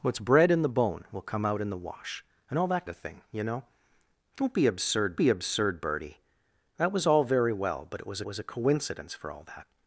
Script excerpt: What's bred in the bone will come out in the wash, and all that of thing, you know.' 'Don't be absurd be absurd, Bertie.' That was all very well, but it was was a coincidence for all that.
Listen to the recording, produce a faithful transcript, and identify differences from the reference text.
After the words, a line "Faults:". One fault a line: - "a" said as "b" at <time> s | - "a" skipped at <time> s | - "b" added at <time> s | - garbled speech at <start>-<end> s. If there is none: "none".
What's bred in the bone will come out in the wash, and all that of thing, you know.' 'Don't be absurd be absurd, Bertie.' That was all very well, but it was was a coincidence for all that.
Faults:
none